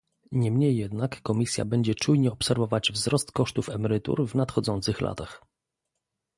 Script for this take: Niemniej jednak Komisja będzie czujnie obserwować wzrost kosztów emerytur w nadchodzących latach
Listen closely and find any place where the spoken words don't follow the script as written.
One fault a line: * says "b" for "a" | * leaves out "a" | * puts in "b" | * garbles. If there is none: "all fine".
all fine